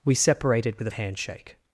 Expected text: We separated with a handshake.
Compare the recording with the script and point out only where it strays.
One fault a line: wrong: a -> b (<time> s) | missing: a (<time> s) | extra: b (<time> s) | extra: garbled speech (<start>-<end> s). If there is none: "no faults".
no faults